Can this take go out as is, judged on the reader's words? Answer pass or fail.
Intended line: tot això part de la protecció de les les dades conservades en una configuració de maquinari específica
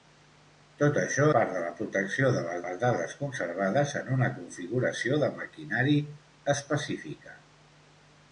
pass